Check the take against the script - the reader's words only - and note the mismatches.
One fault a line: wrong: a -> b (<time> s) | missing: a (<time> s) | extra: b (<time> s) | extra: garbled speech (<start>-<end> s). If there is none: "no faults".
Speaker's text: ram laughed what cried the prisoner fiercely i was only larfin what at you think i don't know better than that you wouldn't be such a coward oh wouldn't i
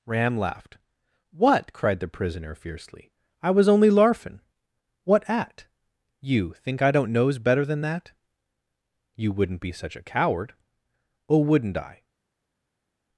wrong: know -> knows (7.1 s)